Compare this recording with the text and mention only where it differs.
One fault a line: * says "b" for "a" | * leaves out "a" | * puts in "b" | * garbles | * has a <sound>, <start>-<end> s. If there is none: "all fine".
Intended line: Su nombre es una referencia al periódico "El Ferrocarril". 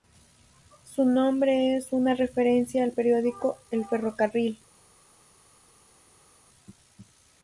all fine